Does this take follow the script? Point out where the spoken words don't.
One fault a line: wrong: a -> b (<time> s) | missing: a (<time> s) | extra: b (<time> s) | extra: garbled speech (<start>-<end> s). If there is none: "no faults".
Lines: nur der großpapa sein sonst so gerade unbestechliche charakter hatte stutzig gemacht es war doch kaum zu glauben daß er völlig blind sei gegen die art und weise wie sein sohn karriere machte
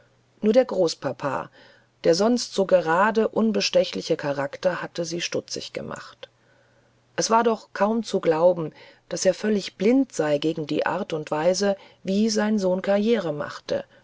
wrong: sein -> der (2.0 s)
extra: sie (5.0 s)